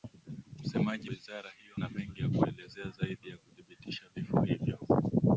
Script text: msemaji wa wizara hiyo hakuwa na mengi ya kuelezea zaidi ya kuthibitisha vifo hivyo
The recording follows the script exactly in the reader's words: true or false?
false